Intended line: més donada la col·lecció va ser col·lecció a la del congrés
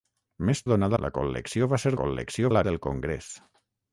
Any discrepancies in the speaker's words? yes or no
no